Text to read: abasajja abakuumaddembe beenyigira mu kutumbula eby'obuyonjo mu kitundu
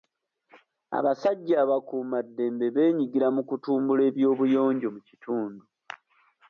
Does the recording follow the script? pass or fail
pass